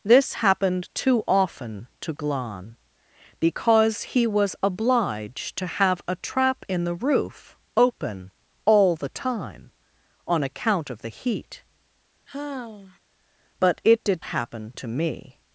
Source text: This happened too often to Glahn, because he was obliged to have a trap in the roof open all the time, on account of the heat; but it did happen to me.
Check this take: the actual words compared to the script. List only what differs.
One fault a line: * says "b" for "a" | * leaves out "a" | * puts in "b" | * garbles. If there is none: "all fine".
all fine